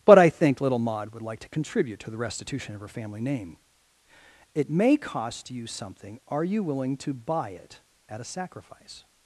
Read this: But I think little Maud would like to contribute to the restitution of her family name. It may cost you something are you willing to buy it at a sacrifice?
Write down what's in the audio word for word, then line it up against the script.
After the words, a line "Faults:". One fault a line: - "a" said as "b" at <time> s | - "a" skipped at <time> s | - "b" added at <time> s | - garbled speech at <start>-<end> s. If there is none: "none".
But I think little Maud would like to contribute to the restitution of her family name. It may cost you something are you willing to buy it at a sacrifice?
Faults:
none